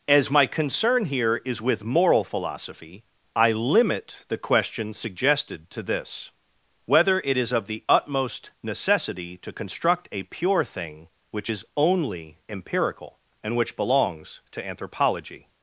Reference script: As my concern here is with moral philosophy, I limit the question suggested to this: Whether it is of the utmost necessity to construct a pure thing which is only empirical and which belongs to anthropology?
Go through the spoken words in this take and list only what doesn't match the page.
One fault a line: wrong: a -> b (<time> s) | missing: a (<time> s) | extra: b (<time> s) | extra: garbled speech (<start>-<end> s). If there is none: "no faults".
no faults